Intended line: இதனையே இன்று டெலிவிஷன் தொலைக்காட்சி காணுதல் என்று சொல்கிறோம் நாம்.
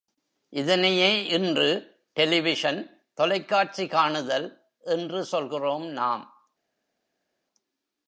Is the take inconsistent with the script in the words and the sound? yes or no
no